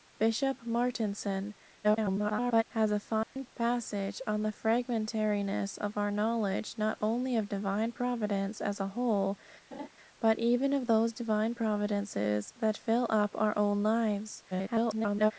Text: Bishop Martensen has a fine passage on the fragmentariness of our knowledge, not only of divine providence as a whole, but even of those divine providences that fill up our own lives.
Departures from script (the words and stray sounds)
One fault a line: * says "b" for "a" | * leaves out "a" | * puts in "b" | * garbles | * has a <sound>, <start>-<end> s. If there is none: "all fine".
* garbles
* has a dropout, 3.2-3.4 s
* has a laugh, 9.7-9.9 s
* garbles